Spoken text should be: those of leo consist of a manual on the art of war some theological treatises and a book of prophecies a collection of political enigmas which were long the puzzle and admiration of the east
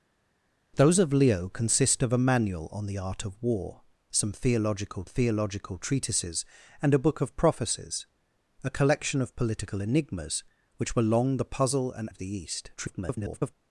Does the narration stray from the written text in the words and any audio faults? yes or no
yes